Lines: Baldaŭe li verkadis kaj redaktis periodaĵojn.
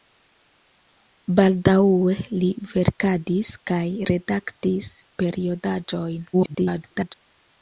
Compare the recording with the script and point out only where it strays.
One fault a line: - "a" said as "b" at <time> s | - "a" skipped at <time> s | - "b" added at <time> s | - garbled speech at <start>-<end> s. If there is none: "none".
- garbled speech at 6.3-7.1 s